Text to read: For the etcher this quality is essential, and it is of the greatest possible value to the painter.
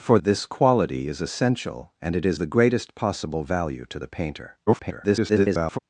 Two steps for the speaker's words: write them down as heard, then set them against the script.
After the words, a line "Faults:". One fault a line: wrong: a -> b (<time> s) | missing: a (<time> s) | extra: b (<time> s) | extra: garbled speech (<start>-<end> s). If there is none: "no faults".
For this quality is essential, and it is the greatest possible value to the painter. [garbled]
Faults:
missing: the etcher (0.2 s)
missing: of (2.4 s)
extra: garbled speech (4.7-5.8 s)